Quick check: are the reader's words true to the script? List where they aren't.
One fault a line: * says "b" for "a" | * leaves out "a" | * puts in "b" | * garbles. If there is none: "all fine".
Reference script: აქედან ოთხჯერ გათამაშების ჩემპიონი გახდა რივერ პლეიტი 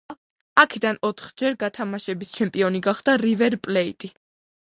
all fine